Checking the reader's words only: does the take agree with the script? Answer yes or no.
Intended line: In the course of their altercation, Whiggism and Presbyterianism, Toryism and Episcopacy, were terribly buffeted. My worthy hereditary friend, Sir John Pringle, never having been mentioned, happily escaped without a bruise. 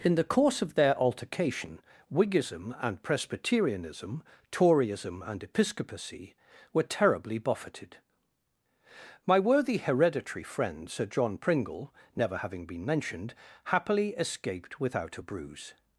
yes